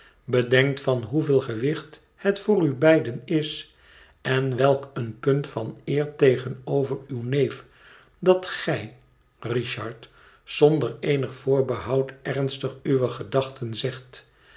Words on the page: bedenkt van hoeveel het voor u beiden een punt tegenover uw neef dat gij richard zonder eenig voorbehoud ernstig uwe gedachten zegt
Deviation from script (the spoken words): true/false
true